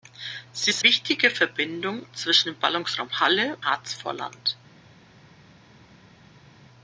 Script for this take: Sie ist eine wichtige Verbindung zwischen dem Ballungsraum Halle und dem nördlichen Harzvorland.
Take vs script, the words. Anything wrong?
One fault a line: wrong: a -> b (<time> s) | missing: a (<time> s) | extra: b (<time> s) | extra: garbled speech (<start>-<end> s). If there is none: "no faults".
missing: eine (0.8 s)
missing: und dem nördlichen (3.6 s)